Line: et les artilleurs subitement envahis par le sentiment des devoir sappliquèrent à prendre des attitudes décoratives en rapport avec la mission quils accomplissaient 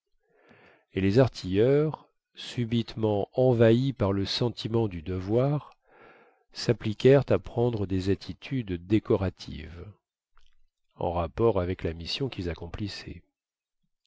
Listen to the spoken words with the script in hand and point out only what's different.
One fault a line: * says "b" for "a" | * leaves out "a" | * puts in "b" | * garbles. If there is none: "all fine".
* says "du" for "des"